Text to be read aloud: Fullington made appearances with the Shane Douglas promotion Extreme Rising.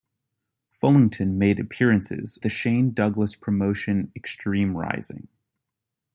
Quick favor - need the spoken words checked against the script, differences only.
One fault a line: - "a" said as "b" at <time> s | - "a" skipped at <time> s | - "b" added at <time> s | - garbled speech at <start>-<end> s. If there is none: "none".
- "with" skipped at 2.4 s